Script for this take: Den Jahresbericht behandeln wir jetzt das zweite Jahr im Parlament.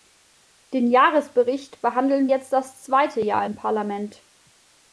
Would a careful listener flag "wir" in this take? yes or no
yes